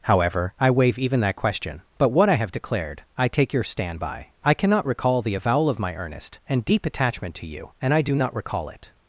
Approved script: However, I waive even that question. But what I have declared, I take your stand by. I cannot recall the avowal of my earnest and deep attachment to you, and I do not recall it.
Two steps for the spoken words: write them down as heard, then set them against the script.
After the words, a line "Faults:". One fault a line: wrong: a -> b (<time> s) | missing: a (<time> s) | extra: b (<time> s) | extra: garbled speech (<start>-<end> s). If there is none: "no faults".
However, I waive even that question. But what I have declared, I take your stand by. I cannot recall the avowal of my earnest and deep attachment to you, and I do not recall it.
Faults:
no faults